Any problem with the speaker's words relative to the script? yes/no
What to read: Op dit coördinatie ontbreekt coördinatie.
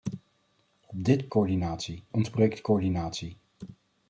no